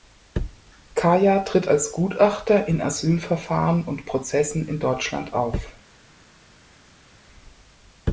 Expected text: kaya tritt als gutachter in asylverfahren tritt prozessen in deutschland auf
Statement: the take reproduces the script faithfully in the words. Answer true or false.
false